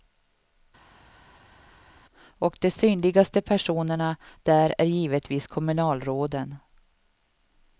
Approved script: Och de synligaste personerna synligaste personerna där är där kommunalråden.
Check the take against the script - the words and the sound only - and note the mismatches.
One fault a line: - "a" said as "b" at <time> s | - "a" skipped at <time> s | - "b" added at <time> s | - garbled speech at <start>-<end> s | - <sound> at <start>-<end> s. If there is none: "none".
- "synligaste personerna" skipped at 4.2 s
- "där" said as "givetvis" at 4.9 s